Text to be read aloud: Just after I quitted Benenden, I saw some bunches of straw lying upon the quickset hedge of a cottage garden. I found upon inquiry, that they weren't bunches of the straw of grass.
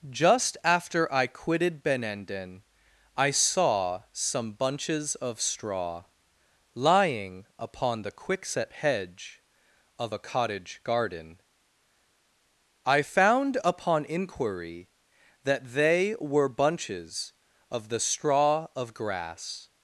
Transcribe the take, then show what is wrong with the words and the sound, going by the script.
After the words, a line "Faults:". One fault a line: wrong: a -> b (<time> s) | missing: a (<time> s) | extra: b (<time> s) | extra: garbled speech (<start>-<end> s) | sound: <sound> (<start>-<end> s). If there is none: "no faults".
Just after I quitted Benenden, I saw some bunches of straw lying upon the quickset hedge of a cottage garden. I found upon inquiry, that they were bunches of the straw of grass.
Faults:
wrong: weren't -> were (16.2 s)